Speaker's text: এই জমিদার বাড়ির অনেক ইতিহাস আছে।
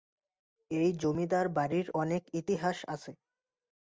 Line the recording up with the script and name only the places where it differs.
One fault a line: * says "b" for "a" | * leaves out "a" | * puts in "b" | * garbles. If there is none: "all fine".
all fine